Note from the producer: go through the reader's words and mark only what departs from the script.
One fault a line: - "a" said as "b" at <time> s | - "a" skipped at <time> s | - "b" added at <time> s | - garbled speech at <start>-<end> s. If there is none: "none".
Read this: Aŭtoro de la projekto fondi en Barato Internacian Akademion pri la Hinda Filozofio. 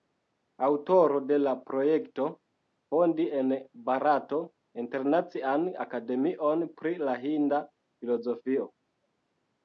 none